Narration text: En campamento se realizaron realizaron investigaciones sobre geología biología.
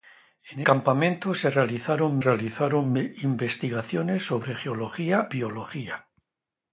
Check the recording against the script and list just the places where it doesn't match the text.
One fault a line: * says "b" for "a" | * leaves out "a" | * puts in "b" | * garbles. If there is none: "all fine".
all fine